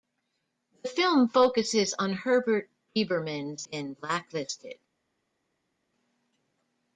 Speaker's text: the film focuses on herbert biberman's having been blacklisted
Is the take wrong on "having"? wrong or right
wrong